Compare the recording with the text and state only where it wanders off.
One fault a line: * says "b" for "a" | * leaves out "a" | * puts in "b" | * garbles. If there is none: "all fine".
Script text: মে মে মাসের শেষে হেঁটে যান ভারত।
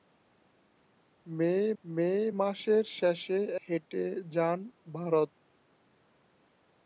all fine